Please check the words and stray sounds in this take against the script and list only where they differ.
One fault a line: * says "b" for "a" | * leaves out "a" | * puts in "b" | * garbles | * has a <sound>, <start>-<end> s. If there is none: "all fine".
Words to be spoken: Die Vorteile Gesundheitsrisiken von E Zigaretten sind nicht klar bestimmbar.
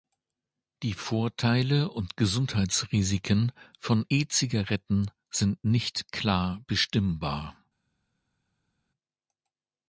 * puts in "und"